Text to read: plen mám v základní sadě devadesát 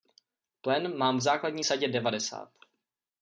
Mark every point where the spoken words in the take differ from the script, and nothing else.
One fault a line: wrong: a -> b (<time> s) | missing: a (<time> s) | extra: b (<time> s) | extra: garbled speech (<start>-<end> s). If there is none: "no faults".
no faults